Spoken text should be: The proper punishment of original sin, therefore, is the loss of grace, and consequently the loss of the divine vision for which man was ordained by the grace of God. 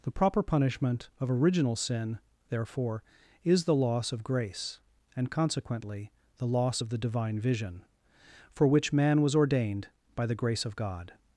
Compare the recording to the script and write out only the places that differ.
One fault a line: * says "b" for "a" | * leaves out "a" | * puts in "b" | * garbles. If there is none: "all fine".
all fine